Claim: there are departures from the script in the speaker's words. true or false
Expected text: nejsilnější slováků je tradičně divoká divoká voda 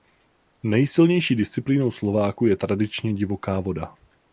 true